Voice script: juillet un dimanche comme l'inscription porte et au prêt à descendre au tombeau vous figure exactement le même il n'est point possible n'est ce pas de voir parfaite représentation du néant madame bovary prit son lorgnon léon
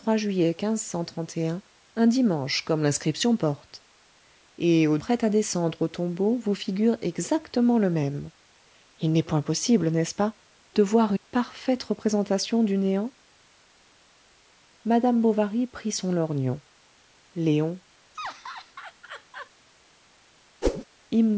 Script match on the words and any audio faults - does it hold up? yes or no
no